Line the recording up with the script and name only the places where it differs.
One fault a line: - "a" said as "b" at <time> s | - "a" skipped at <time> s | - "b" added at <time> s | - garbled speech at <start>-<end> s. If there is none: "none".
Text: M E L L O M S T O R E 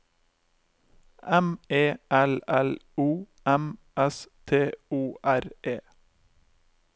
none